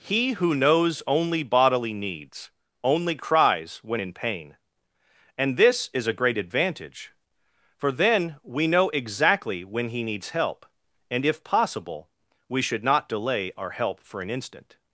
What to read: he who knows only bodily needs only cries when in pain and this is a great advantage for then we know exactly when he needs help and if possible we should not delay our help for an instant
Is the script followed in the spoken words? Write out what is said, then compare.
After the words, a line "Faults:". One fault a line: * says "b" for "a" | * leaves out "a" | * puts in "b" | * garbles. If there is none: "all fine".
he who knows only bodily needs only cries when in pain and this is a great advantage for then we know exactly when he needs help and if possible we should not delay our help for an instant
Faults:
all fine